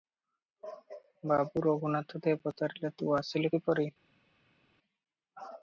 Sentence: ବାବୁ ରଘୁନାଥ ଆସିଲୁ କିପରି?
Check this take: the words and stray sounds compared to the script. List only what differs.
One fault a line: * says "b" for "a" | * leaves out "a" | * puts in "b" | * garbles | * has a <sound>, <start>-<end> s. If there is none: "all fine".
* puts in "ଦେ ପଚାରିଲେ ତୁ"